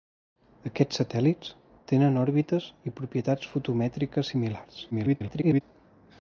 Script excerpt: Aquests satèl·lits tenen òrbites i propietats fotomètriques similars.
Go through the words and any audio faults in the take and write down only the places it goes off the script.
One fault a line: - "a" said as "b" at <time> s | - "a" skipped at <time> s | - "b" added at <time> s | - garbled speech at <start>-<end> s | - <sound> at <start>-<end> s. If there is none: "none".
- garbled speech at 4.9-5.6 s